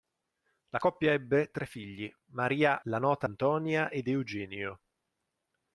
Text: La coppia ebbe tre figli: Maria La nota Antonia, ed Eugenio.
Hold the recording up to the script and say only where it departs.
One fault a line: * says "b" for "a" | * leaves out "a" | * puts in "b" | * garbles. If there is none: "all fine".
all fine